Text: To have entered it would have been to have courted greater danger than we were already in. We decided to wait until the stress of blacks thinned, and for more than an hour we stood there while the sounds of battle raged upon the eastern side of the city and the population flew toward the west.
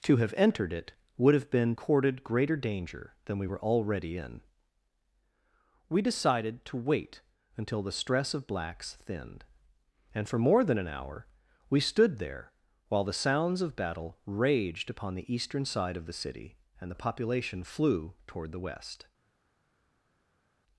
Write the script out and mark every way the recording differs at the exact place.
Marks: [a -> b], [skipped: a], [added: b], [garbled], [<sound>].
To have entered it would have been [skipped: to have] courted greater danger than we were already in. We decided to wait until the stress of blacks thinned, and for more than an hour we stood there while the sounds of battle raged upon the eastern side of the city and the population flew toward the west.